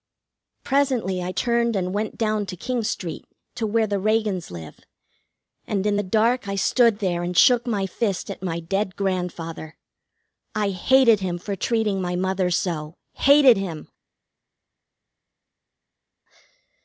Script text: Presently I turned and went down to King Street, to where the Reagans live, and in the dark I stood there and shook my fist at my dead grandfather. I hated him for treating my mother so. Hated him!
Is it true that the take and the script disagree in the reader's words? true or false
false